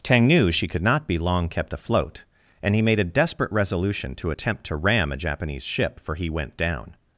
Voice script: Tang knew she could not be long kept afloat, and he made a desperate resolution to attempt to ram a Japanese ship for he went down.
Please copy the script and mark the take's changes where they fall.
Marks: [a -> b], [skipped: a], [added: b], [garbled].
Tang knew she could not be long kept afloat, and he made a desperate resolution to attempt to ram a Japanese ship for he went down.